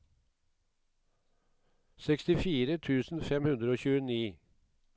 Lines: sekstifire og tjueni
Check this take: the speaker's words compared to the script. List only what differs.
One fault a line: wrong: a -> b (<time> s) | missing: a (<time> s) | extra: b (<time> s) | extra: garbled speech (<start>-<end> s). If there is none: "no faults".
extra: tusen fem hundre (2.8 s)